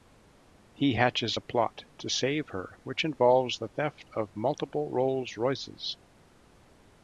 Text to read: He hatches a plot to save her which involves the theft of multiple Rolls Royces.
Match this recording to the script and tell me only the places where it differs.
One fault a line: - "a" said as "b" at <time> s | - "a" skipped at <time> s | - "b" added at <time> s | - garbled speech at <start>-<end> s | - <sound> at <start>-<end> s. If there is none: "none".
none